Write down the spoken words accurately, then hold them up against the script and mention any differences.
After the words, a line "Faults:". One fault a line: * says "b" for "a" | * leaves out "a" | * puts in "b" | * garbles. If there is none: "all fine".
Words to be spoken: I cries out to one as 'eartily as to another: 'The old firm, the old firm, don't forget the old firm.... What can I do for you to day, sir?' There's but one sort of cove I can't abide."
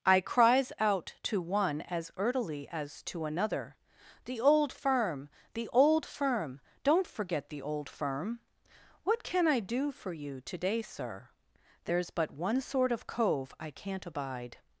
I cries out to one as 'eartily as to another: 'The old firm, the old firm, don't forget the old firm.... What can I do for you to day, sir?' There's but one sort of cove I can't abide."
Faults:
all fine